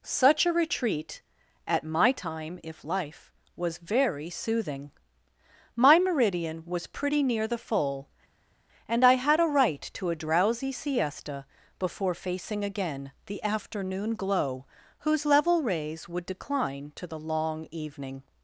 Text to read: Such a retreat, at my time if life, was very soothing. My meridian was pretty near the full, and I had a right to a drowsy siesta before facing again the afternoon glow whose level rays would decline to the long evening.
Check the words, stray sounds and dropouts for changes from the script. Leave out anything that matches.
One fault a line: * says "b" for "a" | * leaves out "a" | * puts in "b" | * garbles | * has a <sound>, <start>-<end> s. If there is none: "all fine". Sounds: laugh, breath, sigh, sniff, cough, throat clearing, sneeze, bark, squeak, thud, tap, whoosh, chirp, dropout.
all fine